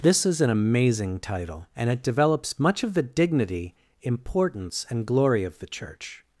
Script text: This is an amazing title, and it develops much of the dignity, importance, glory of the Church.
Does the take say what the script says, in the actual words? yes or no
no